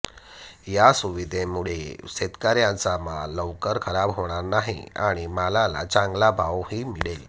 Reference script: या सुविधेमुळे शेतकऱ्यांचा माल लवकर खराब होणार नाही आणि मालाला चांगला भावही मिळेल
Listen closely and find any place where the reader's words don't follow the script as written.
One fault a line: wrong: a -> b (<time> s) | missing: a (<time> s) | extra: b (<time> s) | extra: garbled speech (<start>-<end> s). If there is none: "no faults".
no faults